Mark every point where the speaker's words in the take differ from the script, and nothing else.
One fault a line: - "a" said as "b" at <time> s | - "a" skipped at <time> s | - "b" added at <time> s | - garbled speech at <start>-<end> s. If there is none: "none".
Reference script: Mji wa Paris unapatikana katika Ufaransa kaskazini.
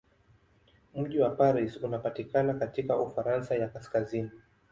- "ya" added at 3.5 s